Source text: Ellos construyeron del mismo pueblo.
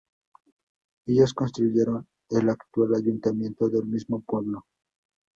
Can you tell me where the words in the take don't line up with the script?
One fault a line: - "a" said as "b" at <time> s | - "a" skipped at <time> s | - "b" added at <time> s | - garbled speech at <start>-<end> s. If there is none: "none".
- "el actual ayuntamiento" added at 2.3 s